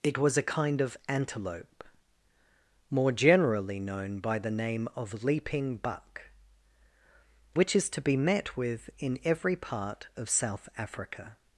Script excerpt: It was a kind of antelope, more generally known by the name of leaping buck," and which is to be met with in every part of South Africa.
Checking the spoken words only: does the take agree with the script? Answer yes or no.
no